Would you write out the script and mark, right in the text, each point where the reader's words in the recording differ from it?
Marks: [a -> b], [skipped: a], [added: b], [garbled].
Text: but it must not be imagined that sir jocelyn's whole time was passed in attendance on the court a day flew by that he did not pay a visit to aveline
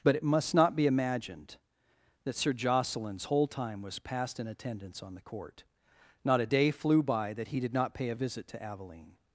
but it must not be imagined that sir jocelyn's whole time was passed in attendance on the court [added: not] a day flew by that he did not pay a visit to aveline